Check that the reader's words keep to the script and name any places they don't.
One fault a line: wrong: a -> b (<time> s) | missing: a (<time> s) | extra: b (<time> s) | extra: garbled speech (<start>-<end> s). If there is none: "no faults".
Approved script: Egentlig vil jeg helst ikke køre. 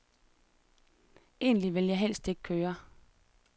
no faults